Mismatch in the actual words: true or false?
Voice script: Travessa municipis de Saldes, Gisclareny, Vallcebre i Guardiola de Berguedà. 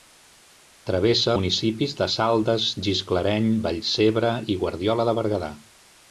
false